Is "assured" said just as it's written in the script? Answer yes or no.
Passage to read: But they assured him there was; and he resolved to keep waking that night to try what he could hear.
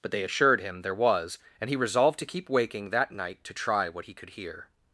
yes